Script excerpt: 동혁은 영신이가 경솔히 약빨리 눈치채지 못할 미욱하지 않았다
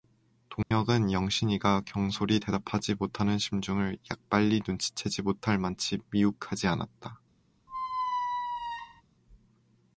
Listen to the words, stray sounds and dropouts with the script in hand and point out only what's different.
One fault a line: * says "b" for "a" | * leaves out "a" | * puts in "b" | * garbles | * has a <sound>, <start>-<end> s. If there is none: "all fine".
* has a dropout, 0.6-0.7 s
* puts in "대답하지 못하는 심중을"
* puts in "만치"
* has a squeak, 7.7-9.0 s